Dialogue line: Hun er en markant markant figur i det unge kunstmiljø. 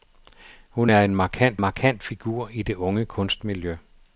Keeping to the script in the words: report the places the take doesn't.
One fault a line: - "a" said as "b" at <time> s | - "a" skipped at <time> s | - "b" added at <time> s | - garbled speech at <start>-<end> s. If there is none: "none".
none